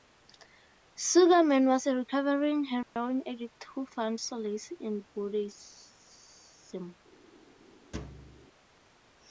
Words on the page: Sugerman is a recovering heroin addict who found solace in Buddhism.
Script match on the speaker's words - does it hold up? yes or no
no